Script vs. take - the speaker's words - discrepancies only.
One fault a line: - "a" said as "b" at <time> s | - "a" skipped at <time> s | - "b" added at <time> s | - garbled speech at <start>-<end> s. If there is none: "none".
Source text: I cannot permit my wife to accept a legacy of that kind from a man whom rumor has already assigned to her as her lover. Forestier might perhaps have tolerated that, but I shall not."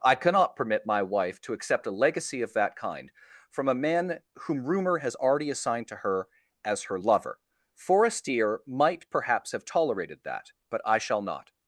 none